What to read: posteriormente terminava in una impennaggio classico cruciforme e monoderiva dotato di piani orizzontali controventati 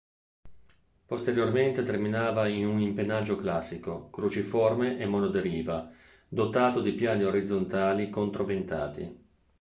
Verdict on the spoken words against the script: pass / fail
fail